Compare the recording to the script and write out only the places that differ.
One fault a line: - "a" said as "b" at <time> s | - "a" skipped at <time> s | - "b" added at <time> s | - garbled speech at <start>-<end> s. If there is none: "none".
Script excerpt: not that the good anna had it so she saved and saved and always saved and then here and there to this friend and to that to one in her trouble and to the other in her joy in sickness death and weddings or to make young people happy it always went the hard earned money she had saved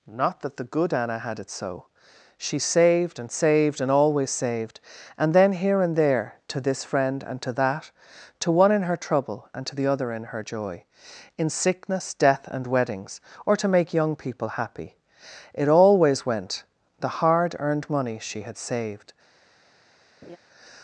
none